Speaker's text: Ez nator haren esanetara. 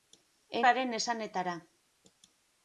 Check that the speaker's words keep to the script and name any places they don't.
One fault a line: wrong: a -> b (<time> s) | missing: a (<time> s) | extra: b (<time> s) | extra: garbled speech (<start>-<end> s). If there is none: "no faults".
missing: nator (0.6 s)